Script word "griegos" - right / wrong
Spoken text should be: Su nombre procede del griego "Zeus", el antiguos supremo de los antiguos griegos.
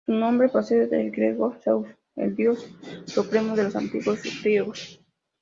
right